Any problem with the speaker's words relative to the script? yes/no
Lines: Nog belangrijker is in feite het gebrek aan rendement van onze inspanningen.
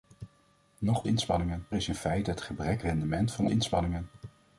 yes